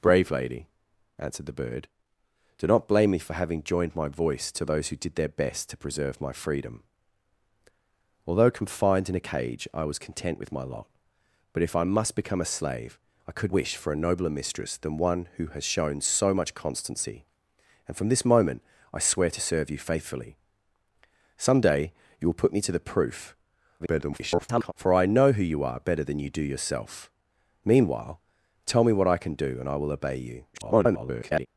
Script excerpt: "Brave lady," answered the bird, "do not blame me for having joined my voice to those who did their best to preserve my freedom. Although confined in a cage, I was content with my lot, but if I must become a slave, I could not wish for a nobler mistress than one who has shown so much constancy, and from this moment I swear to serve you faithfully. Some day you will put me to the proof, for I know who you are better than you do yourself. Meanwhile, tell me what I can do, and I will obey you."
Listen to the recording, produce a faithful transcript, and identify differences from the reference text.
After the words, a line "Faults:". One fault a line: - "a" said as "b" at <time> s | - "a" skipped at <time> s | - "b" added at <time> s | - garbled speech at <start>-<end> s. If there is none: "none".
"Brave lady," answered the bird, "do not blame me for having joined my voice to those who did their best to preserve my freedom. Although confined in a cage, I was content with my lot, but if I must become a slave, I could wish for a nobler mistress than one who has shown so much constancy, and from this moment I swear to serve you faithfully. Some day you will put me to the proof, [garbled] for I know who you are better than you do yourself. Meanwhile, tell me what I can do, and I will obey you." [garbled]
Faults:
- "not" skipped at 13.5 s
- garbled speech at 23.8-24.7 s
- garbled speech at 30.5-31.5 s